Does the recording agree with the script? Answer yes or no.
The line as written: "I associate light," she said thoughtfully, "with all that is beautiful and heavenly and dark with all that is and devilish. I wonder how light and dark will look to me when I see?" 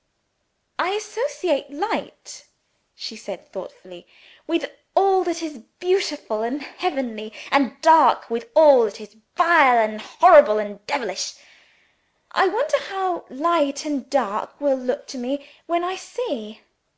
no